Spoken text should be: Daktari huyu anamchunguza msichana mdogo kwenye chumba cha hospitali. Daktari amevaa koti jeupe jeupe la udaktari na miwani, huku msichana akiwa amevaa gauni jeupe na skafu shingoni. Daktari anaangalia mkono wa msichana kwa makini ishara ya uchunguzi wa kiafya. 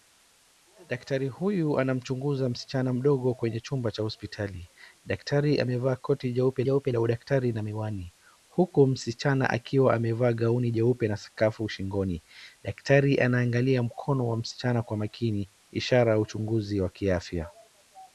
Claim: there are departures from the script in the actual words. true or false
false